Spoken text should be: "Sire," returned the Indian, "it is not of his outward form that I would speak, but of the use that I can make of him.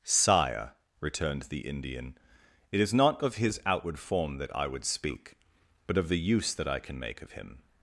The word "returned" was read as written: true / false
true